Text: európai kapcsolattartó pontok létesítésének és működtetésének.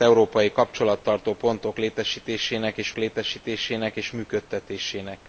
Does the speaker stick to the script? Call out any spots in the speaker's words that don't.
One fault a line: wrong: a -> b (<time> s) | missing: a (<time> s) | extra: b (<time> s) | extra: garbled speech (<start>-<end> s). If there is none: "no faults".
extra: létesítésének és (3.0 s)